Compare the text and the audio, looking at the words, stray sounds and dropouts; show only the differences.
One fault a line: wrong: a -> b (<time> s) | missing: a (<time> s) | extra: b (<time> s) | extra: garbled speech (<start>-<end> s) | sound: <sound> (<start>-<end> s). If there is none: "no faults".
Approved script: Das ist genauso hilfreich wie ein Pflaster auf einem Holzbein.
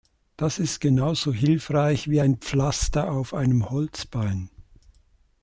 no faults